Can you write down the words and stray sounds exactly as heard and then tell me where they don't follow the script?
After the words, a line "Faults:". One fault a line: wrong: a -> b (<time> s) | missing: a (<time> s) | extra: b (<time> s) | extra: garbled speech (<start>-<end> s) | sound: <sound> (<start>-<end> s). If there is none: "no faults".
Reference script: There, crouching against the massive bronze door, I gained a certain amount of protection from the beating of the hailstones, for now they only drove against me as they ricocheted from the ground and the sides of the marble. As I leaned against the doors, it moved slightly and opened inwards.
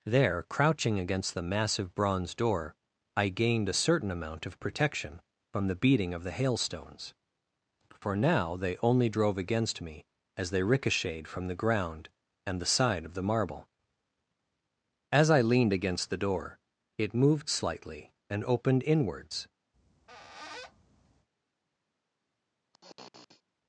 There, crouching against the massive bronze door, I gained a certain amount of protection from the beating of the hailstones, for now they only drove against me as they ricocheted from the ground and the side of the marble. As I leaned against the door, it moved slightly and opened inwards.
Faults:
wrong: sides -> side (12.7 s)
wrong: doors -> door (16.2 s)
sound: squeak (19.7-21.3 s)
sound: sniff (22.7-23.4 s)